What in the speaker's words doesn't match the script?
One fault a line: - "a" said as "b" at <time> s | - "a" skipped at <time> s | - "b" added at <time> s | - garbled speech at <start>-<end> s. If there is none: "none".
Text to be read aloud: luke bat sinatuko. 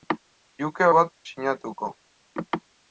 none